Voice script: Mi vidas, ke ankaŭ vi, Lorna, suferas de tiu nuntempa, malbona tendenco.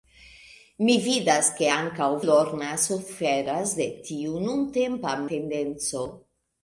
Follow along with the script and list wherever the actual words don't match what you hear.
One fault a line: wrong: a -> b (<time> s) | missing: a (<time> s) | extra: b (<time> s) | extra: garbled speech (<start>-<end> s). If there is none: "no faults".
missing: vi (2.1 s)
missing: malbona (5.1 s)